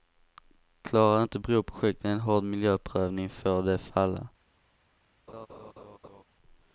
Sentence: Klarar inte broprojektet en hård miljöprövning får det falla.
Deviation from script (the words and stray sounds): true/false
true